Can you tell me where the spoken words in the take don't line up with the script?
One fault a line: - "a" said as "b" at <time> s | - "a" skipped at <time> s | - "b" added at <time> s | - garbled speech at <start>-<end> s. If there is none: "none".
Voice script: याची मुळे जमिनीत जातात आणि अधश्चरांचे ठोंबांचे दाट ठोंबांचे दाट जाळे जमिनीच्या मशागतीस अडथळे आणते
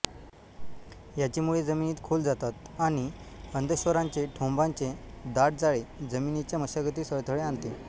- "खोल" added at 2.0 s
- "ठोंबांचे दाट" skipped at 5.6 s